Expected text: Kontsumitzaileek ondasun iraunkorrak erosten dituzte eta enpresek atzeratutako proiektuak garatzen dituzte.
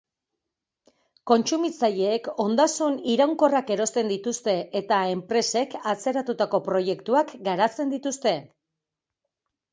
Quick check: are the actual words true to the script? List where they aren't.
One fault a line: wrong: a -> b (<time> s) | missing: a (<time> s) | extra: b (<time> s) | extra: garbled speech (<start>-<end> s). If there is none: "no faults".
no faults